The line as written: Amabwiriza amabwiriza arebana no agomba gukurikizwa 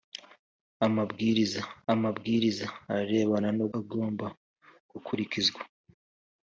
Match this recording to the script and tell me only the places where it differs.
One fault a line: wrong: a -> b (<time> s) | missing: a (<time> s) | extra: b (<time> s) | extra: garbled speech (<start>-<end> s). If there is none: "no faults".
no faults